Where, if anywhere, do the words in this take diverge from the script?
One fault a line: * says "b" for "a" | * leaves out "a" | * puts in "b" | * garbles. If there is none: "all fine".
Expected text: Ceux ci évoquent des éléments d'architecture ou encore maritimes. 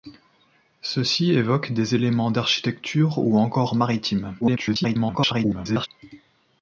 * garbles